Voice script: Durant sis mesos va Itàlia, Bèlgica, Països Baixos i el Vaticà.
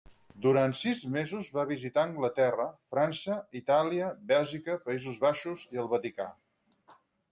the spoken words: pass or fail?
fail